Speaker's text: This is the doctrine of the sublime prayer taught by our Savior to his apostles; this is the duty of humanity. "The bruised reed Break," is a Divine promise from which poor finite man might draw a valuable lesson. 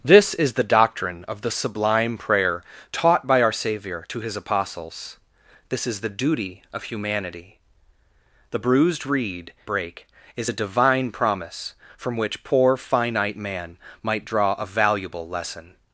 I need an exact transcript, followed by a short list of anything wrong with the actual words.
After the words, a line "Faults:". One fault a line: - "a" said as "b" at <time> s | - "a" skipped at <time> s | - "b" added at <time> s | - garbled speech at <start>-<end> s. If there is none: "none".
This is the doctrine of the sublime prayer taught by our Savior to his apostles; this is the duty of humanity. "The bruised reed Break," is a Divine promise from which poor finite man might draw a valuable lesson.
Faults:
none